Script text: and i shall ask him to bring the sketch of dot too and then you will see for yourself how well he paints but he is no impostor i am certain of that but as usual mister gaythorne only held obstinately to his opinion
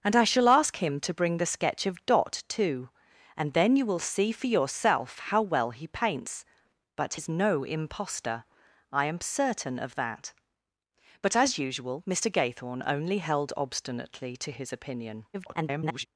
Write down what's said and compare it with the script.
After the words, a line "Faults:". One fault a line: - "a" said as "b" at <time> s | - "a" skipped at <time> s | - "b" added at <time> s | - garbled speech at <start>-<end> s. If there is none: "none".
and i shall ask him to bring the sketch of dot too and then you will see for yourself how well he paints but is no impostor i am certain of that but as usual mister gaythorne only held obstinately to his opinion [garbled]
Faults:
- "he" skipped at 7.2 s
- garbled speech at 15.3-16.1 s